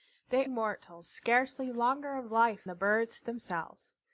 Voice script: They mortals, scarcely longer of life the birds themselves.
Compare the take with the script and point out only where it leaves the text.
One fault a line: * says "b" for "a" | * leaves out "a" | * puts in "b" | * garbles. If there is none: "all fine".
all fine